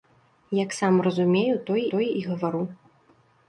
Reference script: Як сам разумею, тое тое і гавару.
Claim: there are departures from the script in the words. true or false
false